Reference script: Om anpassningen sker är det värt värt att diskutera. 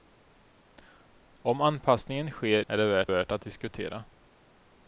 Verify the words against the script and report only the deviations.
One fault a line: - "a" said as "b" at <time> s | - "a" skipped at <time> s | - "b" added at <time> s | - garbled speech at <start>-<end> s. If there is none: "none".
none